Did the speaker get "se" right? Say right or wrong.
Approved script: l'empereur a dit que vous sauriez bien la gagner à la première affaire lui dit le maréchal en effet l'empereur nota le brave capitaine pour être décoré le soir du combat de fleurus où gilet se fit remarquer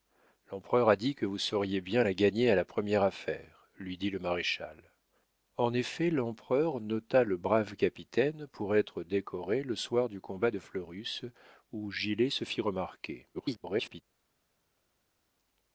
right